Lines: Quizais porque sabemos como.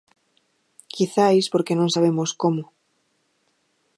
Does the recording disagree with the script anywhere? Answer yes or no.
yes